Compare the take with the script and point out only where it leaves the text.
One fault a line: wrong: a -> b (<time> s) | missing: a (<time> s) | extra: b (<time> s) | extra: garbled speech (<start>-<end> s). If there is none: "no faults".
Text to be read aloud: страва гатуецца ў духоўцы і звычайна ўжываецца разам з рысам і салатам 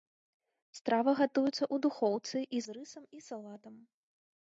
missing: звычайна ўжываецца разам (2.6 s)